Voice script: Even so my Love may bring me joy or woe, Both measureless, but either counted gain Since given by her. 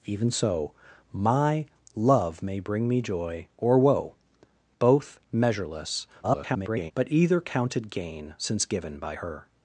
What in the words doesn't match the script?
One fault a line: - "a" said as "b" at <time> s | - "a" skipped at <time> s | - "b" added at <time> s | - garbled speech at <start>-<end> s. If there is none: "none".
- garbled speech at 6.2-6.9 s